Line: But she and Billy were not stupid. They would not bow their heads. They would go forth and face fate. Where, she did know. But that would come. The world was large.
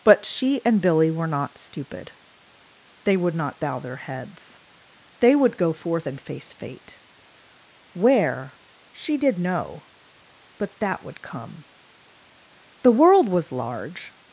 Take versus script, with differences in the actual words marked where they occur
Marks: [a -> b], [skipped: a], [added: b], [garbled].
But she and Billy were not stupid. They would not bow their heads. They would go forth and face fate. Where, she did know. But that would come. The world was large.